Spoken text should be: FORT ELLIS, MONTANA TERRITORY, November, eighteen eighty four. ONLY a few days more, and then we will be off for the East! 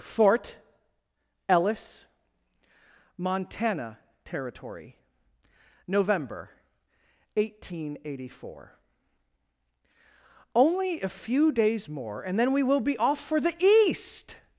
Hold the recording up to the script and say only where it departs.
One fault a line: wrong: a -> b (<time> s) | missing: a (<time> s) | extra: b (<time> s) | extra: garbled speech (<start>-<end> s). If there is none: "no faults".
no faults